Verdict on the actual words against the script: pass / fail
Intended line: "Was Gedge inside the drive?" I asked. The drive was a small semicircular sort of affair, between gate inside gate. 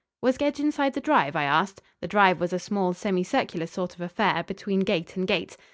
fail